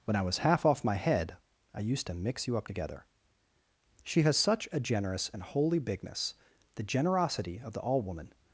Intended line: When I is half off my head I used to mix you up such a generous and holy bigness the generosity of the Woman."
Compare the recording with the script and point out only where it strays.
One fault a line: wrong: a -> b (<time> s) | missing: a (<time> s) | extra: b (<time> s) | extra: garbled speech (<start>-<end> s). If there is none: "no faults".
wrong: is -> was (0.2 s)
extra: together She has (2.7 s)
extra: All (7.8 s)